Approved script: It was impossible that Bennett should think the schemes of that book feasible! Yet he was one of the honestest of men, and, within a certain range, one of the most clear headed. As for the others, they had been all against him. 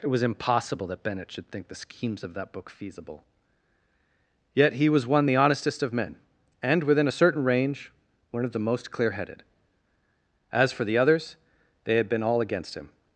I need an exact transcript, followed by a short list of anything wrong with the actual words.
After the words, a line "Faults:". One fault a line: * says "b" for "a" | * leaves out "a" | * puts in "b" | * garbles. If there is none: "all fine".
It was impossible that Bennett should think the schemes of that book feasible! Yet he was one the honestest of men, and, within a certain range, one of the most clear headed. As for the others, they had been all against him.
Faults:
* leaves out "of"